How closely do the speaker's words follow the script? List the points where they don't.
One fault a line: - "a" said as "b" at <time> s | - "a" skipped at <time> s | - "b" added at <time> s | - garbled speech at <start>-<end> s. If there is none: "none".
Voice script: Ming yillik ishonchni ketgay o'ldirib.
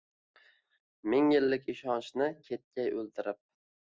none